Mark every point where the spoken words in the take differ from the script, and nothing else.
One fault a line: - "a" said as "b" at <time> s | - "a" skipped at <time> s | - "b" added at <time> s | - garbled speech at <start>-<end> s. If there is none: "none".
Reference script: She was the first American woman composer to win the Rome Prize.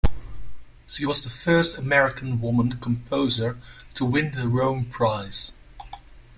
none